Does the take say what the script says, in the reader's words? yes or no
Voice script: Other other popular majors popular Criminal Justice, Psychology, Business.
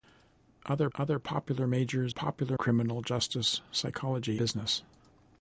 yes